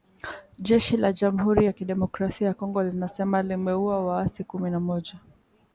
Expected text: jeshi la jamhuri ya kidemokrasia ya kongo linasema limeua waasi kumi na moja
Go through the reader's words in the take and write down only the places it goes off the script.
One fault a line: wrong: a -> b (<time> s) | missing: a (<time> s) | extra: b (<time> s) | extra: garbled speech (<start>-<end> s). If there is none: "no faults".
no faults